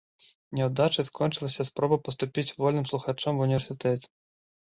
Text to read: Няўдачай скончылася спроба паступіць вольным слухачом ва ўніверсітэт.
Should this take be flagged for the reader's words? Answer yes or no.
no